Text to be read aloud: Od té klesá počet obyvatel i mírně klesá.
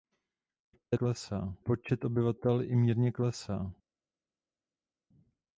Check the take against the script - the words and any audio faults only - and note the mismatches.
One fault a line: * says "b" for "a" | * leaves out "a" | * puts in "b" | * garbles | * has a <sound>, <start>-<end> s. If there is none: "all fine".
all fine